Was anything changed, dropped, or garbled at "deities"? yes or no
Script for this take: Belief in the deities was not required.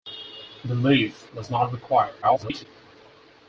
yes